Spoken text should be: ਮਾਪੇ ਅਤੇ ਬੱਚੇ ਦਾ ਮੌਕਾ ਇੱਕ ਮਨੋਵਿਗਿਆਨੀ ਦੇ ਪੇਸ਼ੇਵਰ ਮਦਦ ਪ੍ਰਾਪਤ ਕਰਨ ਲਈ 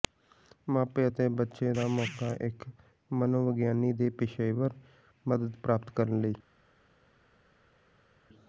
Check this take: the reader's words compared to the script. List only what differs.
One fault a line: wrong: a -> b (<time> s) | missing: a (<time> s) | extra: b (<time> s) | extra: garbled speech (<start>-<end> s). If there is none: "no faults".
no faults